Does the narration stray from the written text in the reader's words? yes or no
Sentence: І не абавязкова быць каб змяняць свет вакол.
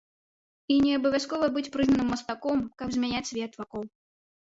yes